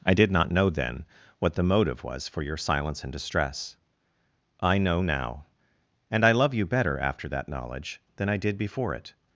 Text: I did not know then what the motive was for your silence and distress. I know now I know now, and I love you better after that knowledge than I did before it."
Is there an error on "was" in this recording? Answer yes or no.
no